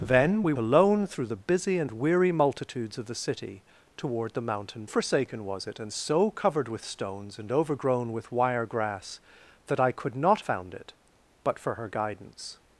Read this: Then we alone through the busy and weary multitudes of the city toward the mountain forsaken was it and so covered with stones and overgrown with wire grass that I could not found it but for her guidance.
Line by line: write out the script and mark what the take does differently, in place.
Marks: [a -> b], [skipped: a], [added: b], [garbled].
Then we alone through the busy and weary multitudes of the city toward the mountain forsaken was it and so covered with stones and overgrown with wire grass that I could not found it but for her guidance.